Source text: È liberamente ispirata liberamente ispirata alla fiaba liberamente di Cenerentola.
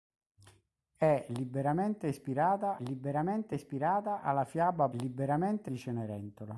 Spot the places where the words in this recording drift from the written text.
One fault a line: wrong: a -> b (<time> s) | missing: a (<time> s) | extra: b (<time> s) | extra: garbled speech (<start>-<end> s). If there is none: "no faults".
no faults